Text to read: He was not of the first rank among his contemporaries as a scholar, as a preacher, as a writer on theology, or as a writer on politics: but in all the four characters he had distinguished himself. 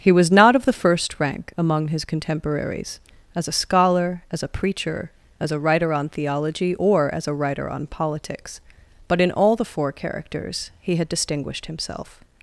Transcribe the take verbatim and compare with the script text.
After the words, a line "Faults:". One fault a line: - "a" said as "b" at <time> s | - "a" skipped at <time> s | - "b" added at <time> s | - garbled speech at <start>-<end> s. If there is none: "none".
He was not of the first rank among his contemporaries as a scholar, as a preacher, as a writer on theology, or as a writer on politics: but in all the four characters he had distinguished himself.
Faults:
none